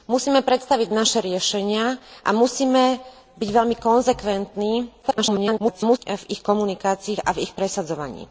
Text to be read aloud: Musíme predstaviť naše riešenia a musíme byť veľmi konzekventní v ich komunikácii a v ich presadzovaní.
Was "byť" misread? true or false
false